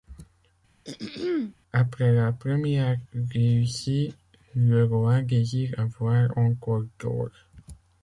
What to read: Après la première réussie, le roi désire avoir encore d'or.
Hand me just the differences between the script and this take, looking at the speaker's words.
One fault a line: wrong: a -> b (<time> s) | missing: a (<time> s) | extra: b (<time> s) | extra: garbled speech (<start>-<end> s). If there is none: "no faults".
no faults